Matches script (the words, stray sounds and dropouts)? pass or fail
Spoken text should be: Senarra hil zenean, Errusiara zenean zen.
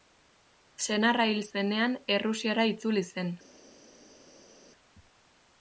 fail